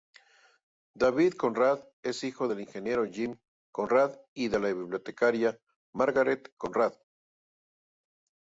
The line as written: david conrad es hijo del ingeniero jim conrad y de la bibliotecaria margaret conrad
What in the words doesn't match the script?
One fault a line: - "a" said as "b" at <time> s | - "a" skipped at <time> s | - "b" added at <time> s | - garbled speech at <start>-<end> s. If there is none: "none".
none